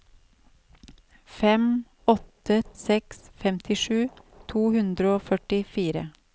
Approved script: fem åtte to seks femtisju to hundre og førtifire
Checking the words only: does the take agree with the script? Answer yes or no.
no